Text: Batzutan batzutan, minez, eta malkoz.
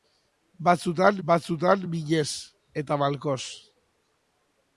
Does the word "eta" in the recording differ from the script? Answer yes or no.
no